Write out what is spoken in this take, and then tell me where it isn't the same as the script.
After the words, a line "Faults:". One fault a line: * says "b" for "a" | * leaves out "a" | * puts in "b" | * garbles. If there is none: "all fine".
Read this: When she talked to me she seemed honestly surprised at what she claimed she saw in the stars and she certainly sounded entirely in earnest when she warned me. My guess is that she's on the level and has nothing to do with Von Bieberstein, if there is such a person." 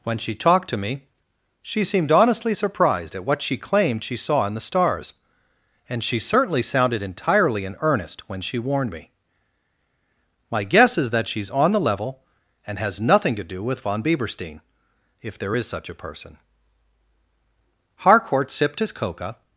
When she talked to me she seemed honestly surprised at what she claimed she saw in the stars and she certainly sounded entirely in earnest when she warned me. My guess is that she's on the level and has nothing to do with Von Bieberstein, if there is such a person." Harcourt sipped his Coca
Faults:
* puts in "Harcourt sipped his Coca"